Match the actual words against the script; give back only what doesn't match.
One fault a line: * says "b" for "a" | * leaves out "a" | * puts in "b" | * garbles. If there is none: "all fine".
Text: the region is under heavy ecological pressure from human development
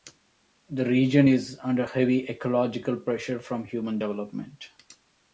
all fine